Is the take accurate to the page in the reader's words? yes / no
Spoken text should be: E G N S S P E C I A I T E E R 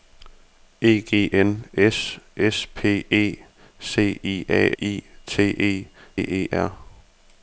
yes